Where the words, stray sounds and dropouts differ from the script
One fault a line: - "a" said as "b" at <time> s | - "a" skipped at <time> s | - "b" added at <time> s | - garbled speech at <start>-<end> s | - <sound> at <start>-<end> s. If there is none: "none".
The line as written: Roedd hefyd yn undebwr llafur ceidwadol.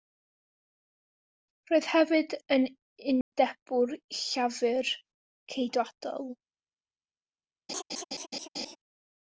- dropout at 3.2-3.3 s
- laugh at 7.7-8.8 s